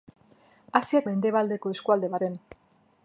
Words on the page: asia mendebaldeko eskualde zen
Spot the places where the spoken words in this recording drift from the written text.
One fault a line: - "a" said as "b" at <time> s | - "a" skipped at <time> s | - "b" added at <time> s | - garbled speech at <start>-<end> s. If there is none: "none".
none